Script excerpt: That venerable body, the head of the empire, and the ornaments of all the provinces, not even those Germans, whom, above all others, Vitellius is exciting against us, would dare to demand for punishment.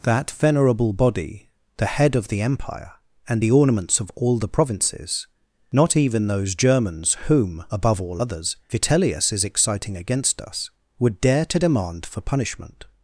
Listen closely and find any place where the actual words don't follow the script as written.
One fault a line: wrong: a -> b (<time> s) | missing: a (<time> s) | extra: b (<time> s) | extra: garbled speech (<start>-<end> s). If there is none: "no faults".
no faults